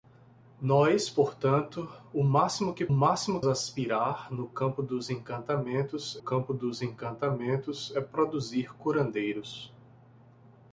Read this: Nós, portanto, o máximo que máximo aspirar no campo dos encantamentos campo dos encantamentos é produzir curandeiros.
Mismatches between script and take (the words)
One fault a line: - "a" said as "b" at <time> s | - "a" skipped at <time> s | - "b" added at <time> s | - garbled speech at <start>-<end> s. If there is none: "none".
none